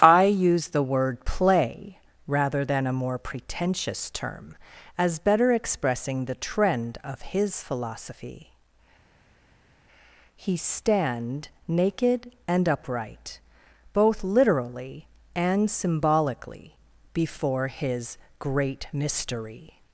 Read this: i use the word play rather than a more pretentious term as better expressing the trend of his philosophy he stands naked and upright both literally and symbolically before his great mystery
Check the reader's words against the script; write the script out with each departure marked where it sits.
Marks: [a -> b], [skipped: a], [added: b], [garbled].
i use the word play rather than a more pretentious term as better expressing the trend of his philosophy he [stands -> stand] naked and upright both literally and symbolically before his great mystery